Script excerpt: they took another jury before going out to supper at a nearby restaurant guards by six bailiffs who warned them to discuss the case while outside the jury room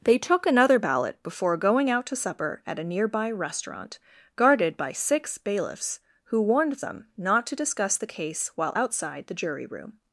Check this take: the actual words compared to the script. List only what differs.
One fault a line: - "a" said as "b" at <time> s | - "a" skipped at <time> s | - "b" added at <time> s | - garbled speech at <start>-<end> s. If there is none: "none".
- "jury" said as "ballot" at 0.8 s
- "guards" said as "guarded" at 4.3 s
- "not" added at 7.2 s